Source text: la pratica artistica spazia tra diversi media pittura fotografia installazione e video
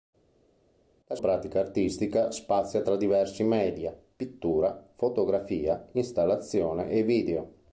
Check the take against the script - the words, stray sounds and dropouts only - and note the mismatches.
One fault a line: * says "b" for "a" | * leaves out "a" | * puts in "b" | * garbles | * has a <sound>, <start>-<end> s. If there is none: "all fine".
all fine